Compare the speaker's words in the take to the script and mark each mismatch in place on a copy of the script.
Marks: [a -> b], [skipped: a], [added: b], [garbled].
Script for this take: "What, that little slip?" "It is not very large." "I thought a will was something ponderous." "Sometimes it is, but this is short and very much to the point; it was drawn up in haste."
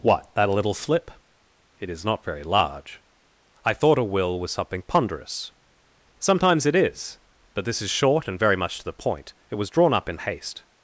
"What, that little slip?" "It is not very large." "I thought a will was something ponderous." "Sometimes it is, but this is short and very much to the point; it was drawn up in haste."